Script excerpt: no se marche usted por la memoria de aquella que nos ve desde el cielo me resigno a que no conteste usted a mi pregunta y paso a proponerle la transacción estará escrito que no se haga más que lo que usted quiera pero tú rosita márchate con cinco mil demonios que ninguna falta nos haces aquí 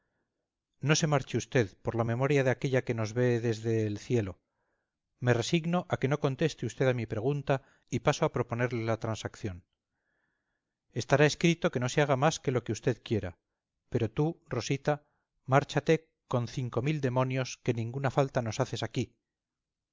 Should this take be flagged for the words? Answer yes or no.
no